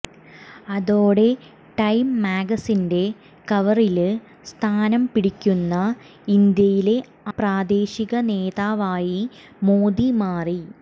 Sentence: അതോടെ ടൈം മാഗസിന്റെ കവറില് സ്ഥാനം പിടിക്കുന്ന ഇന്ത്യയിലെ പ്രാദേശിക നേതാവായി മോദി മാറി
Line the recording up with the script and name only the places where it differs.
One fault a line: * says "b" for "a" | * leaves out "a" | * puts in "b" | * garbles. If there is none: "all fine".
all fine